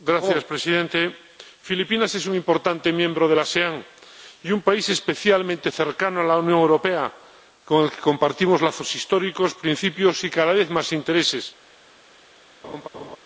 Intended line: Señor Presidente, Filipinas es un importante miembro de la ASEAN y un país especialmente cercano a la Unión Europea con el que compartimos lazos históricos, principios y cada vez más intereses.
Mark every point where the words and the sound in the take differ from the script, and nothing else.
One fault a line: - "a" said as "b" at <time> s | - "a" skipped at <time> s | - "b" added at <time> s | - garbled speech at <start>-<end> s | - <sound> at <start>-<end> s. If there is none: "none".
- laugh at 12.6-13.2 s